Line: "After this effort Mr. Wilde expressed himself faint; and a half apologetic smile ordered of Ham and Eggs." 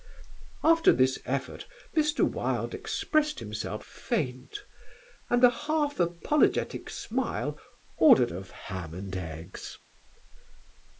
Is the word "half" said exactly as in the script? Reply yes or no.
yes